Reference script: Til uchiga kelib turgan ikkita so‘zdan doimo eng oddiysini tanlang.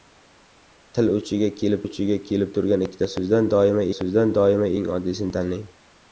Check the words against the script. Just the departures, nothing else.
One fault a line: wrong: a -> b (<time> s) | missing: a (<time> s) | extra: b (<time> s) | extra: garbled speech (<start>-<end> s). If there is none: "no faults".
extra: uchiga kelib (1.8 s)
extra: so‘zdan doimo (4.0 s)